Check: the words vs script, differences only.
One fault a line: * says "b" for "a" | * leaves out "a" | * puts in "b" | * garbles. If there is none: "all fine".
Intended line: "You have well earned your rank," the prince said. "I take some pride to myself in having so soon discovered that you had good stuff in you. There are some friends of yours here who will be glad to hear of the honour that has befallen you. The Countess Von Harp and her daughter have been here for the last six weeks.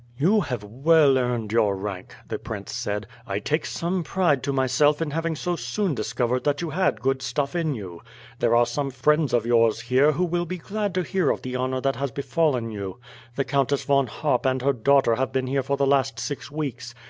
all fine